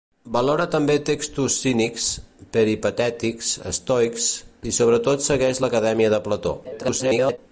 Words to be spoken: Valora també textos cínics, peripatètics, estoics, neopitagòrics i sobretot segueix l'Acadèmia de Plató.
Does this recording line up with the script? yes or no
no